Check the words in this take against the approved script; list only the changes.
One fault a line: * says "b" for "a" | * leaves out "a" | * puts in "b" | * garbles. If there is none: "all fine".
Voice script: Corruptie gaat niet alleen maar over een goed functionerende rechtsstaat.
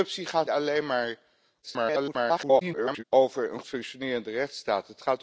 * leaves out "niet"
* garbles
* leaves out "goed"